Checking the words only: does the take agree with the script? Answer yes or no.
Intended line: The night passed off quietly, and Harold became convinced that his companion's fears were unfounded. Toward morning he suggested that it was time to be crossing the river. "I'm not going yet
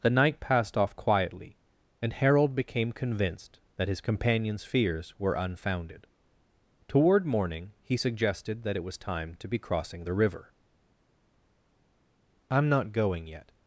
yes